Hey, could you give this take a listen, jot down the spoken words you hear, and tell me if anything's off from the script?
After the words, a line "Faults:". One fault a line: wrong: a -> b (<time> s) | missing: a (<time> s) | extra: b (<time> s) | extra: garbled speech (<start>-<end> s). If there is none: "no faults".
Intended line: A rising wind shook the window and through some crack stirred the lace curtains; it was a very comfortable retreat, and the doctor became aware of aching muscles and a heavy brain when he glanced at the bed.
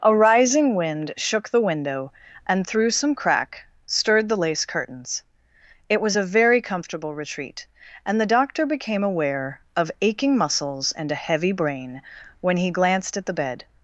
A rising wind shook the window and through some crack stirred the lace curtains; it was a very comfortable retreat, and the doctor became aware of aching muscles and a heavy brain when he glanced at the bed.
Faults:
no faults